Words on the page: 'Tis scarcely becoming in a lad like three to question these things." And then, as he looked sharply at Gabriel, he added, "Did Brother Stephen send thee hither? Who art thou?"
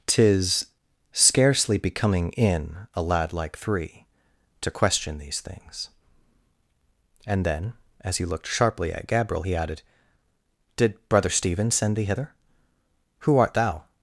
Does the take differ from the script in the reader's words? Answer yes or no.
no